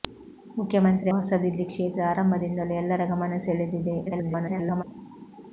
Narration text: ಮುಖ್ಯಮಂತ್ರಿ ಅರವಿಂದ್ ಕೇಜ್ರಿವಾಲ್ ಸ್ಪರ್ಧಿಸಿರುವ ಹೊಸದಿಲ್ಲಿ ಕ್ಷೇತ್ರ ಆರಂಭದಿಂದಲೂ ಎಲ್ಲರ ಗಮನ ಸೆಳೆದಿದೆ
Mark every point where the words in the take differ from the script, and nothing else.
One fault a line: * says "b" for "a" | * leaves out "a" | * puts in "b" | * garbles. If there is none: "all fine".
* leaves out "ಅರವಿಂದ್ ಕೇಜ್ರಿವಾಲ್ ಸ್ಪರ್ಧಿಸಿರುವ"
* garbles